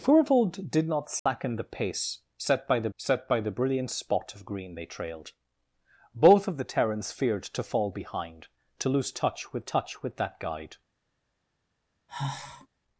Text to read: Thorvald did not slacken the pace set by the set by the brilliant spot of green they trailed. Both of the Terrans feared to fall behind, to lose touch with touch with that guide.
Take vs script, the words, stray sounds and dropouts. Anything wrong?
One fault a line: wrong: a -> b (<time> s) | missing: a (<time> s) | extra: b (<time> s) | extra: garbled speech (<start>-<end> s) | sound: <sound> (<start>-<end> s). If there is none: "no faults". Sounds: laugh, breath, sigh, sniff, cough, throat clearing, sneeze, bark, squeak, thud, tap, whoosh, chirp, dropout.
sound: dropout (1.2-1.3 s)
sound: sigh (12.1-12.7 s)